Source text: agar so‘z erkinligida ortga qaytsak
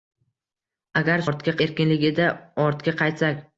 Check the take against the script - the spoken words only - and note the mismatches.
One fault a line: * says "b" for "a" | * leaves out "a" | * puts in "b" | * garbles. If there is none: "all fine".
* says "ortga" for "so‘z"